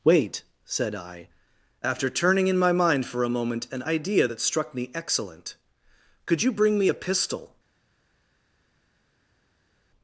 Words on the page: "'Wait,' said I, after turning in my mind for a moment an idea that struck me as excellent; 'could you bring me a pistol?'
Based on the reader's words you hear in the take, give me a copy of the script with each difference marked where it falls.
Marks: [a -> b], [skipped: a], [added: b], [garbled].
"'Wait,' said I, after turning in my mind for a moment an idea that struck me [skipped: as] excellent; 'could you bring me a pistol?'